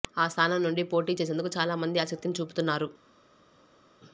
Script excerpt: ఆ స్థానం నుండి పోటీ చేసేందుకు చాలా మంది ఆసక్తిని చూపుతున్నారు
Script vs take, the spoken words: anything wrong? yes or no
no